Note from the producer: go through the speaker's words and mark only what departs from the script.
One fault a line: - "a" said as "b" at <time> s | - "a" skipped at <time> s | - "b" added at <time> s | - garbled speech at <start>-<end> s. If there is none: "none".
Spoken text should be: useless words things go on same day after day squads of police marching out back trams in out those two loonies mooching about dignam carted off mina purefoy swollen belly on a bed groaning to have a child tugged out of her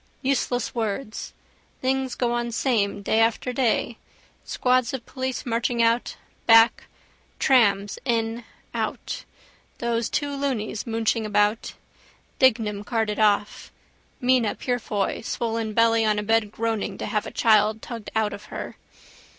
none